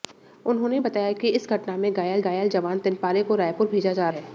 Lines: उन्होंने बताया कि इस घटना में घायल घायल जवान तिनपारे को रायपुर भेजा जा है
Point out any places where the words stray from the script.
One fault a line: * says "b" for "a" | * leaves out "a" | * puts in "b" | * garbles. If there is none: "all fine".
all fine